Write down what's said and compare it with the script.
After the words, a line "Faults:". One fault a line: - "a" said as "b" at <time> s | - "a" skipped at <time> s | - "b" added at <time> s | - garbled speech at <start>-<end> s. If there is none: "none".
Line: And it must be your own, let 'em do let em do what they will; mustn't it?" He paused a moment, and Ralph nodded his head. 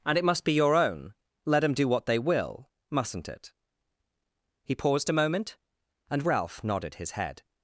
And it must be your own, let 'em do what they will; mustn't it?" He paused a moment, and Ralph nodded his head.
Faults:
- "let em do" skipped at 1.9 s